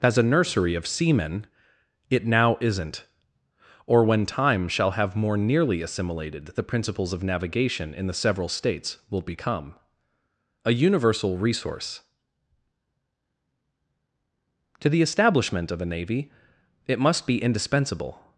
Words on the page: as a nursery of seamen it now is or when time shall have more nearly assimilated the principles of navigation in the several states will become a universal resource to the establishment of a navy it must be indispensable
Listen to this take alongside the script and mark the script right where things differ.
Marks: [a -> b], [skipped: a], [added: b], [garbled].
as a nursery of seamen it now [is -> isn't] or when time shall have more nearly assimilated the principles of navigation in the several states will become a universal resource to the establishment of a navy it must be indispensable